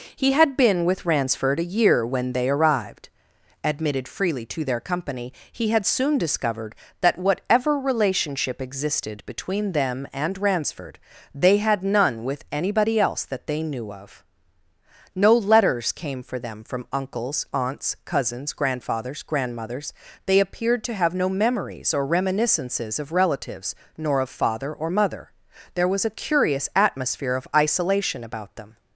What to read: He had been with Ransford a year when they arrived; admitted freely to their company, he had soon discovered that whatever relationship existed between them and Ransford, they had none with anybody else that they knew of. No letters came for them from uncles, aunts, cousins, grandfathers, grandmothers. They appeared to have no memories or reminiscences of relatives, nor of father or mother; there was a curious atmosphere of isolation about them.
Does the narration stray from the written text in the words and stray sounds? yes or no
no